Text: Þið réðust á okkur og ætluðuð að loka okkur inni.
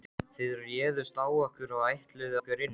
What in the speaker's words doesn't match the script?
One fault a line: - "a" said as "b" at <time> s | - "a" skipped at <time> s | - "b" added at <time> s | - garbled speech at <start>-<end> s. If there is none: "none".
- "að loka" skipped at 2.4 s